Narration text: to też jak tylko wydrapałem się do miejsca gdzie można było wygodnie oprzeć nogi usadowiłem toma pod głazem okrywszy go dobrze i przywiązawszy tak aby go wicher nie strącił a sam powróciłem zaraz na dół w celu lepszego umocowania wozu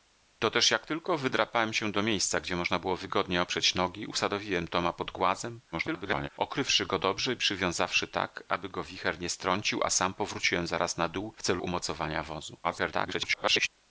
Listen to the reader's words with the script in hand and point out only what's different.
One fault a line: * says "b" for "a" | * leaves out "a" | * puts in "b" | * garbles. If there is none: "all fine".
* garbles
* leaves out "lepszego"
* garbles